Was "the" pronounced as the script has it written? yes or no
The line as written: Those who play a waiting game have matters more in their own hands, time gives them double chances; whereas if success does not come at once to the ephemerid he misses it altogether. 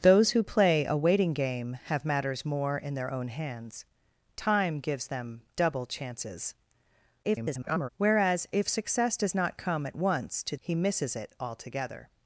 no